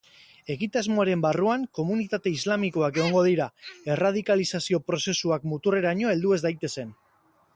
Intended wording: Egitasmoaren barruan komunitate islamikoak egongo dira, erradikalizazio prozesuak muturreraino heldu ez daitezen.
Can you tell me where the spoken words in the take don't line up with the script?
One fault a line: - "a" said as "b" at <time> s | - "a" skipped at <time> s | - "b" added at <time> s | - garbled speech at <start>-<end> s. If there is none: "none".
none